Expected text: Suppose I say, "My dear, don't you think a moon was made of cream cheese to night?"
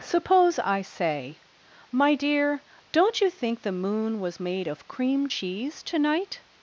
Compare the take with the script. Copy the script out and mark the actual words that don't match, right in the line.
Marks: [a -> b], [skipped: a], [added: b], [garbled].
Suppose I say, "My dear, don't you think [a -> the] moon was made of cream cheese to night?"